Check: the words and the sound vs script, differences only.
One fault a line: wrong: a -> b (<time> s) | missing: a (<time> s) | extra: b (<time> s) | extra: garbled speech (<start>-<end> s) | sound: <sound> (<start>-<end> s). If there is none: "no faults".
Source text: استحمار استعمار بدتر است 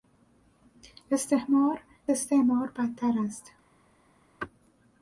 no faults